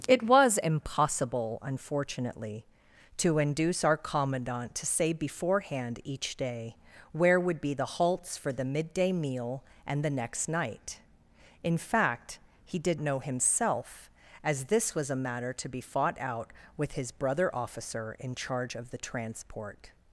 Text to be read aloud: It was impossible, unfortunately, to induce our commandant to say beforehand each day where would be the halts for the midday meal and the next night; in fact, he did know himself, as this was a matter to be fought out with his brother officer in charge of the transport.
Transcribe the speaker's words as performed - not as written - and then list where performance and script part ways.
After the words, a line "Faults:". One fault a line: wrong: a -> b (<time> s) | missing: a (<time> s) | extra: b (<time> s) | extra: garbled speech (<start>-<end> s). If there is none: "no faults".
It was impossible, unfortunately, to induce our commandant to say beforehand each day where would be the halts for the midday meal and the next night; in fact, he did know himself, as this was a matter to be fought out with his brother officer in charge of the transport.
Faults:
no faults